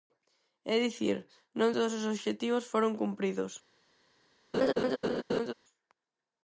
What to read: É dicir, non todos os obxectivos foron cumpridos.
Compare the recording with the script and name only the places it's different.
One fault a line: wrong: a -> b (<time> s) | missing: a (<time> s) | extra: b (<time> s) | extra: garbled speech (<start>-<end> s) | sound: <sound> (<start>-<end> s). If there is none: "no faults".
sound: laugh (4.5-5.5 s)